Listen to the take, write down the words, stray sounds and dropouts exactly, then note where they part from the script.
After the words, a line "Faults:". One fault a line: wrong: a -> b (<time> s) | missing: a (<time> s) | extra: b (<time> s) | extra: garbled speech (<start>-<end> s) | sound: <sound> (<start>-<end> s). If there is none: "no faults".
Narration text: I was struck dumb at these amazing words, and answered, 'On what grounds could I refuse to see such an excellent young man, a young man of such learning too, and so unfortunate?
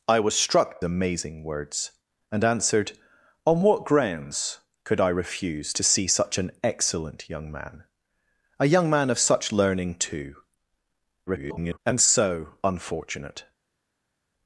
I was struck amazing words, and answered, 'On what grounds could I refuse to see such an excellent young man, a young man of such learning too, [garbled] and so unfortunate?
Faults:
missing: dumb at these (0.8 s)
extra: garbled speech (11.3-11.8 s)